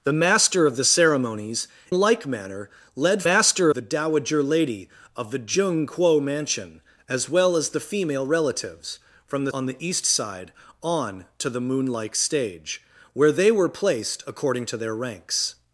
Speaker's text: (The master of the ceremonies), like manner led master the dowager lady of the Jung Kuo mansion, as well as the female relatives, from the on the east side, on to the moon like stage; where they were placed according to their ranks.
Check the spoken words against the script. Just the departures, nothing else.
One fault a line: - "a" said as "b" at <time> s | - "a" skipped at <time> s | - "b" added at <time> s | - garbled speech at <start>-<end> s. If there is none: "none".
none